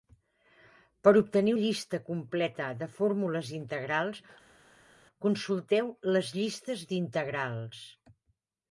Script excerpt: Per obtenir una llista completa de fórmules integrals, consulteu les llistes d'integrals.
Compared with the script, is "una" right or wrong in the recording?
wrong